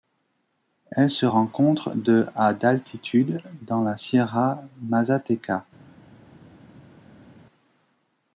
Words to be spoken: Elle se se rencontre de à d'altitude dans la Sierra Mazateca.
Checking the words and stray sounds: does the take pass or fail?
fail